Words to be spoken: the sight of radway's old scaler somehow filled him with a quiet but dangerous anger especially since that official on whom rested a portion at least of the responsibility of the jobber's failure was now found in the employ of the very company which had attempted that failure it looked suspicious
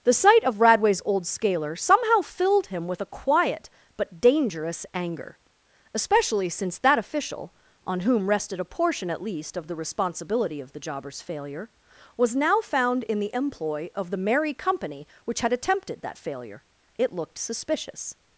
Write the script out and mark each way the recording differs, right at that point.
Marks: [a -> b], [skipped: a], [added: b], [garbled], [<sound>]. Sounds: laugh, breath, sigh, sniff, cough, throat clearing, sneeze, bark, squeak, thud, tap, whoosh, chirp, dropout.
the sight of radway's old scaler somehow filled him with a quiet but dangerous anger especially since that official on whom rested a portion at least of the responsibility of the jobber's failure was now found in the employ of the [very -> merry] company which had attempted that failure it looked suspicious